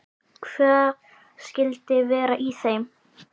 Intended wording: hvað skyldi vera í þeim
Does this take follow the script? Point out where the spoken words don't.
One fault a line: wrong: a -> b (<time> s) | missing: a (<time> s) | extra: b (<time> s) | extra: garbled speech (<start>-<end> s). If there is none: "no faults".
no faults